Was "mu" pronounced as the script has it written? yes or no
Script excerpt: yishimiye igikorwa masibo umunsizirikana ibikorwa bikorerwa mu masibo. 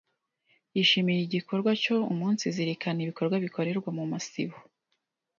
yes